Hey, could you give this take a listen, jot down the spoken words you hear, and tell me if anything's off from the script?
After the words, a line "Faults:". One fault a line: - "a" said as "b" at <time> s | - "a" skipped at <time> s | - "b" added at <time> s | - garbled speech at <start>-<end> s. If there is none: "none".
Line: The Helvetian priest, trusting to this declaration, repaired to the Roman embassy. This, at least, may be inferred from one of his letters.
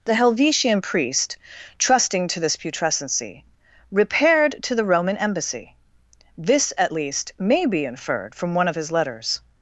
The Helvetian priest, trusting to this putrescency, repaired to the Roman embassy. This, at least, may be inferred from one of his letters.
Faults:
- "declaration" said as "putrescency" at 2.6 s